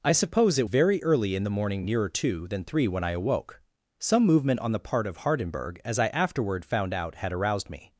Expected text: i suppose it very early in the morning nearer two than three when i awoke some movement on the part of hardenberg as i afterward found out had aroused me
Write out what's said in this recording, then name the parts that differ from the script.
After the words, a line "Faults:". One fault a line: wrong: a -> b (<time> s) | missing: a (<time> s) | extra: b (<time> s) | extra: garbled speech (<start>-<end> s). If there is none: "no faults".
i suppose it very early in the morning nearer two than three when i awoke some movement on the part of hardenberg as i afterward found out had aroused me
Faults:
no faults